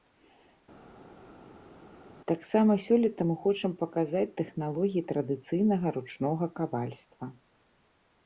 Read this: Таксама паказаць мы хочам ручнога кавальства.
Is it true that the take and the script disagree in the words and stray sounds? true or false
true